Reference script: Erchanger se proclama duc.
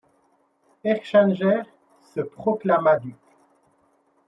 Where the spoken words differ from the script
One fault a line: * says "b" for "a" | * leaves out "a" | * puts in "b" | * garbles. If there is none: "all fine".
all fine